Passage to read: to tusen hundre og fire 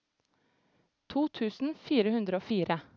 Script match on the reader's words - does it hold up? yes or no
no